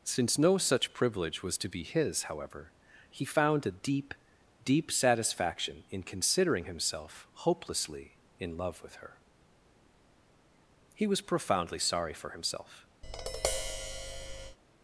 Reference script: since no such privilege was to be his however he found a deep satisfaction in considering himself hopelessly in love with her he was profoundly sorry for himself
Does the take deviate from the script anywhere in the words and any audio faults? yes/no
yes